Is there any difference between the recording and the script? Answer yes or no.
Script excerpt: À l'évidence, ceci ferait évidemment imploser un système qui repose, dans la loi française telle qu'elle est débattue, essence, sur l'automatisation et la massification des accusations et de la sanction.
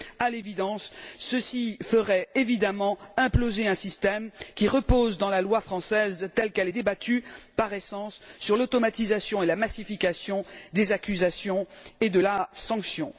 yes